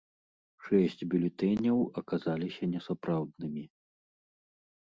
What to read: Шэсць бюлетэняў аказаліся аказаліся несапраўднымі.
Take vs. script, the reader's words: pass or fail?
fail